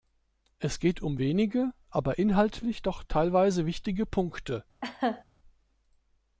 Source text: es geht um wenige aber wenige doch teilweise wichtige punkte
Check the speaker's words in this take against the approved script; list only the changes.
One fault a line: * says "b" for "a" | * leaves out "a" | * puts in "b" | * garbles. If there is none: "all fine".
* says "inhaltlich" for "wenige"